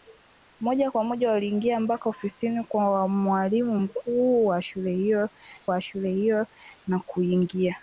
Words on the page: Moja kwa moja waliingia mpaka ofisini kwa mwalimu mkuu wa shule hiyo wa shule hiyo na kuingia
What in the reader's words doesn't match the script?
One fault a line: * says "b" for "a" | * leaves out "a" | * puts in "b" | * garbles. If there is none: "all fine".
all fine